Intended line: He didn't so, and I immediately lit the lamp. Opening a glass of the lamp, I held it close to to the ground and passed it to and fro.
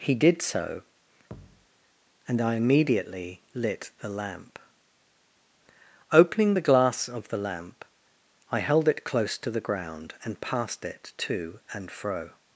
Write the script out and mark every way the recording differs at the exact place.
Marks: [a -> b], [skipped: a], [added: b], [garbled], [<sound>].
He [didn't -> did] so, [thud] and I immediately lit the lamp. Opening [a -> the] glass of the lamp, I held it close to [skipped: to] the ground and passed it to and fro.